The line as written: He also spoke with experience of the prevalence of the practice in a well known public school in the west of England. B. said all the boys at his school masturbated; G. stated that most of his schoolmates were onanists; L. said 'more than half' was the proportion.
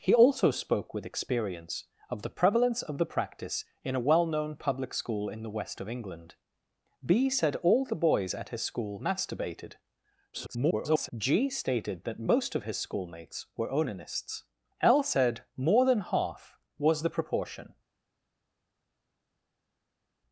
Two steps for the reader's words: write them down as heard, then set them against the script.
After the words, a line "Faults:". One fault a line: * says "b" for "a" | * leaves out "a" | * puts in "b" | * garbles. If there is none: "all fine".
He also spoke with experience of the prevalence of the practice in a well known public school in the west of England. B. said all the boys at his school masturbated; [garbled] G. stated that most of his schoolmates were onanists; L. said 'more than half' was the proportion.
Faults:
* garbles